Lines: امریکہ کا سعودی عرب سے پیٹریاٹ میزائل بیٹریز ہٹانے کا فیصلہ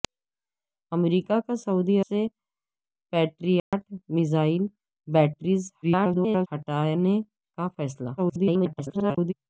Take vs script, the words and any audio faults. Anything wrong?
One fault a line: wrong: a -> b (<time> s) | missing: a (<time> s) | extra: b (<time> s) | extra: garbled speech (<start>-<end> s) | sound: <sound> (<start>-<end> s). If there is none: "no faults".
missing: عرب (2.0 s)
sound: dropout (3.6-3.7 s)
extra: garbled speech (5.8-6.5 s)
extra: garbled speech (8.2-9.3 s)